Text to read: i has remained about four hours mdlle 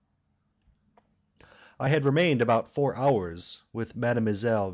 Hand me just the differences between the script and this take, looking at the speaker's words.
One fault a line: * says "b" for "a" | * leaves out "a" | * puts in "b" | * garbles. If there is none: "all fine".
* says "had" for "has"
* puts in "with"